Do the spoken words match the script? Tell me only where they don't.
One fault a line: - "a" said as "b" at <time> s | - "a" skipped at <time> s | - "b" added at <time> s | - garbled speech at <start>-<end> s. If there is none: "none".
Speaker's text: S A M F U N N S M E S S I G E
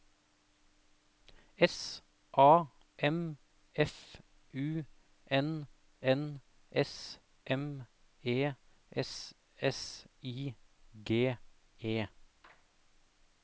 none